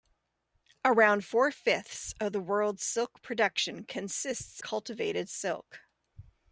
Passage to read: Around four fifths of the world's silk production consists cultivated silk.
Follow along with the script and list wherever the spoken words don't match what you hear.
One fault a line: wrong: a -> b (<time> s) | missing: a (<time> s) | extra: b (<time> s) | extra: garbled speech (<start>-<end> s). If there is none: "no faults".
no faults